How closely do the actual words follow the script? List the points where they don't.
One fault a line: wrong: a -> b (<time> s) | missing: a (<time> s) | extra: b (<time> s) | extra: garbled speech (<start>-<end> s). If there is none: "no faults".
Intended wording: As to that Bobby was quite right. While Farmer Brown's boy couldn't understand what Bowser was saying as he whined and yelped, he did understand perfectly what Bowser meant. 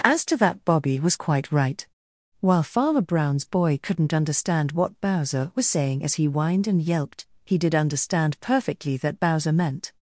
wrong: what -> that (9.0 s)